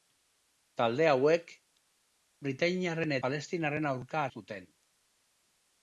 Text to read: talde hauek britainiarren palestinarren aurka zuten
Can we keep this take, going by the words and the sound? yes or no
yes